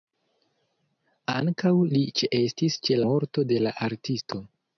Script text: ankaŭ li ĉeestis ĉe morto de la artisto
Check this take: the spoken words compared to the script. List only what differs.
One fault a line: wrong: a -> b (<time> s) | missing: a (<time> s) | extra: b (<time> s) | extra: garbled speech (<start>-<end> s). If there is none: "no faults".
no faults